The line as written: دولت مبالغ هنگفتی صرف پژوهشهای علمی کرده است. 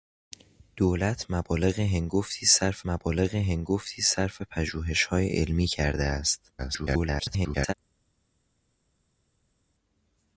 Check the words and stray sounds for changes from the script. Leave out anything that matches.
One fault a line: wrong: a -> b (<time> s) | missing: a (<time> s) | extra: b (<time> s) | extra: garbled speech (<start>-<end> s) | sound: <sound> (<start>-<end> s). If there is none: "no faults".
extra: مبالغ هنگفتی صرف (2.8 s)
extra: garbled speech (6.6-7.7 s)